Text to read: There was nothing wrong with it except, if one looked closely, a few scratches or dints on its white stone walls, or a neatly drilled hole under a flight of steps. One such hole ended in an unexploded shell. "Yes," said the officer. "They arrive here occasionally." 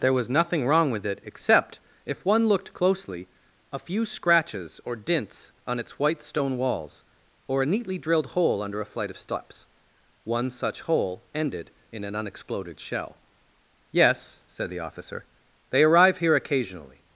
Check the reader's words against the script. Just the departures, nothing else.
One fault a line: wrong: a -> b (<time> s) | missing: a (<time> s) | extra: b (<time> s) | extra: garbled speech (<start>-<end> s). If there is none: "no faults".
no faults